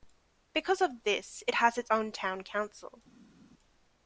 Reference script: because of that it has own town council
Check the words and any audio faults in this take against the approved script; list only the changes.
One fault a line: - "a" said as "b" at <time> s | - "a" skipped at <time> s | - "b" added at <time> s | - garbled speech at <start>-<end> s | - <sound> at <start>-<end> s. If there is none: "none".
- "that" said as "this" at 1.1 s
- "its" added at 1.8 s